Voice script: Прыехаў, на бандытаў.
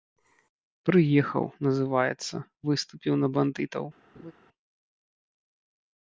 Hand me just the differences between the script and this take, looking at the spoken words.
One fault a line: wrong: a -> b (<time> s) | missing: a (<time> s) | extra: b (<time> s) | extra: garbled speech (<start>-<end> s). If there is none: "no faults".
extra: называецца выступіў (1.7 s)